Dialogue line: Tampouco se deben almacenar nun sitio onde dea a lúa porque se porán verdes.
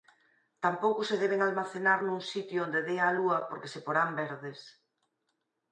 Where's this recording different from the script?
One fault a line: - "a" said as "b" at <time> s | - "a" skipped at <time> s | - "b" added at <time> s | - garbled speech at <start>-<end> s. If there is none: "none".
none